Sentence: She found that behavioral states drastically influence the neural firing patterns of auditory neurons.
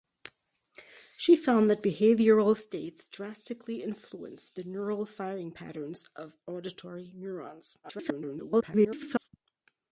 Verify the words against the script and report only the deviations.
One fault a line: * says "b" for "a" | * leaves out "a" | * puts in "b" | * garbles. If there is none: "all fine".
* garbles